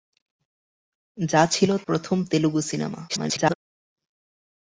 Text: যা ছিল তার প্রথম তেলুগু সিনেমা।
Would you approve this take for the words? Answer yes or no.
no